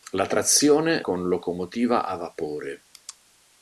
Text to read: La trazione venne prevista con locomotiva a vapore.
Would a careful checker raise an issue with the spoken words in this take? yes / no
yes